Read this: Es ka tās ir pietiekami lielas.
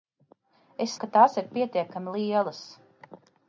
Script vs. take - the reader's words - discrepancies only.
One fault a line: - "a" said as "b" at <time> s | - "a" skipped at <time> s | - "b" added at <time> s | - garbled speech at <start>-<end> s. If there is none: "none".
none